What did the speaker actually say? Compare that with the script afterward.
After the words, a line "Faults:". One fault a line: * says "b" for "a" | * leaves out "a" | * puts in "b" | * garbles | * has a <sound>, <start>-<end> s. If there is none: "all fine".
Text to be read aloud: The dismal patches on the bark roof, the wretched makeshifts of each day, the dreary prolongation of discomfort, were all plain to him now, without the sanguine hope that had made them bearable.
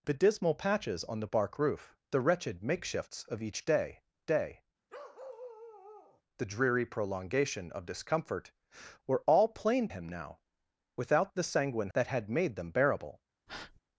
The dismal patches on the bark roof, the wretched makeshifts of each day day, the dreary prolongation of discomfort, were all plain him now, without the sanguine that had made them bearable.
Faults:
* puts in "day"
* has a bark, 4.9-6.2 s
* leaves out "to"
* leaves out "hope"
* has a breath, 13.5-13.8 s